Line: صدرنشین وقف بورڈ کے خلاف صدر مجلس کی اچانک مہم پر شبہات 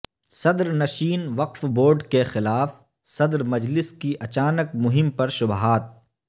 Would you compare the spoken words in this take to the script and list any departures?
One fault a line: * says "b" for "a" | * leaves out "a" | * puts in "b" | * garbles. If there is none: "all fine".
all fine